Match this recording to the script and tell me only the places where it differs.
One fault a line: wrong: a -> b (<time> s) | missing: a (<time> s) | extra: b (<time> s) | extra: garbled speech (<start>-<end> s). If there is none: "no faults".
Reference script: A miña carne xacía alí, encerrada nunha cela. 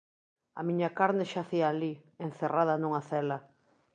no faults